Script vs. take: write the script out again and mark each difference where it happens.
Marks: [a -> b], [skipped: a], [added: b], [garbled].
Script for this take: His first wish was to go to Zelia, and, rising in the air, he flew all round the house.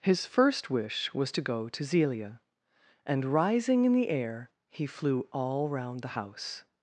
His first wish was to go to Zelia, and, rising in the air, he flew all round the house.